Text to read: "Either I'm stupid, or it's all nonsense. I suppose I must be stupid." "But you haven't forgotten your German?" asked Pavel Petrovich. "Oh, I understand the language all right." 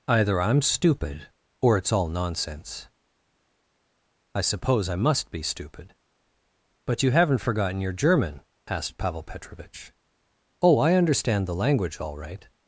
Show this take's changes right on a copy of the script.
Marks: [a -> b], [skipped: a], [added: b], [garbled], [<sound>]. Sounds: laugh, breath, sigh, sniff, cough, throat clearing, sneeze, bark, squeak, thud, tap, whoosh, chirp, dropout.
"Either I'm stupid, or it's all nonsense. I suppose I must be stupid." "But you haven't forgotten your German?" asked Pavel Petrovich. "Oh, I understand the language all right."